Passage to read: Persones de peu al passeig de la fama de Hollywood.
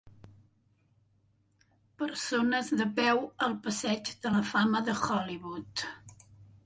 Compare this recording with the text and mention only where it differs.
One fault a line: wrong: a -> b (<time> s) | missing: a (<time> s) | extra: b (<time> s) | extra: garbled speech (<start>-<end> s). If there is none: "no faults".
no faults